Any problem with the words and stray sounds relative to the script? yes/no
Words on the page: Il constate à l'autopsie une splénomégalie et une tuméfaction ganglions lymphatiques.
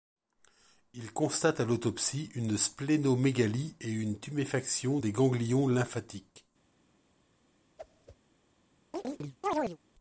yes